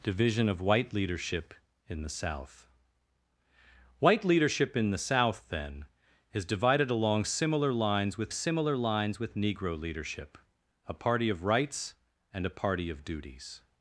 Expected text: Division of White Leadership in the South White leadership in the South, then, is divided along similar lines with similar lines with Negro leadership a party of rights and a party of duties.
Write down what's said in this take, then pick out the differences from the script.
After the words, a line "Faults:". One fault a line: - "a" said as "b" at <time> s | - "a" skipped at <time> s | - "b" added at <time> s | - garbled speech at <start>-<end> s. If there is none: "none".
Division of White Leadership in the South White leadership in the South, then, is divided along similar lines with similar lines with Negro leadership a party of rights and a party of duties.
Faults:
none